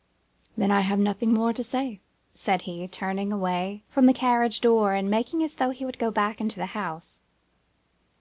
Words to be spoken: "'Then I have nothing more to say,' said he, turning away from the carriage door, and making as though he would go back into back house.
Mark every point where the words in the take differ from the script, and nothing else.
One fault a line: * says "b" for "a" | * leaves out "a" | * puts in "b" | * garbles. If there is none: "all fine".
* says "the" for "back"